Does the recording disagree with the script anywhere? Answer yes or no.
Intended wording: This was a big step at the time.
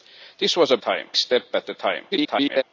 yes